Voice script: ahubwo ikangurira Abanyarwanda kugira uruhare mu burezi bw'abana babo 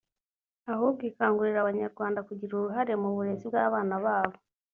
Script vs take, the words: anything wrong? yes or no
no